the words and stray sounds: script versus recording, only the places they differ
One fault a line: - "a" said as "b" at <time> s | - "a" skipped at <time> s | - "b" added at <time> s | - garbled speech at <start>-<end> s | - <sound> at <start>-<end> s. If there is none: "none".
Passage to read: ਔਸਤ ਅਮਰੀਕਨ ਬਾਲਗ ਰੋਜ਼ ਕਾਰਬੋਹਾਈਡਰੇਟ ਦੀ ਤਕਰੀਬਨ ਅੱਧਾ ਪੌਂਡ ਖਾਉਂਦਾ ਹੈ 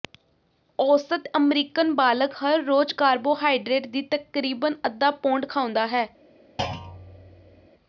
- "ਹਰ" added at 2.4 s
- thud at 6.6-7.7 s